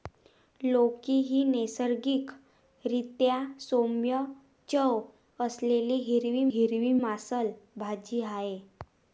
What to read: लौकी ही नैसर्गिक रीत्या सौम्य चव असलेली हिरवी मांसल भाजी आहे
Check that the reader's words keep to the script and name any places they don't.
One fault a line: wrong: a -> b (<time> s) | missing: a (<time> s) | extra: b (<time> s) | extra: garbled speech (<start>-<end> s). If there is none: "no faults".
extra: हिरवी (6.5 s)